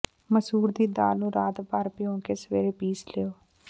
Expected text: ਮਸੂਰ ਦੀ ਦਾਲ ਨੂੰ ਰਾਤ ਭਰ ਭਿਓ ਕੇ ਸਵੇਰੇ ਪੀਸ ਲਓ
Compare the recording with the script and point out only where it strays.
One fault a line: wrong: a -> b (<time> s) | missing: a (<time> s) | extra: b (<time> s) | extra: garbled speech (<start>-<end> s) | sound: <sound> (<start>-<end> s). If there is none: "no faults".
no faults